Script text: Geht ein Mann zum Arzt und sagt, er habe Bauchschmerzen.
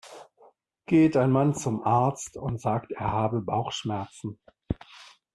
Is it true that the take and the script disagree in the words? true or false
false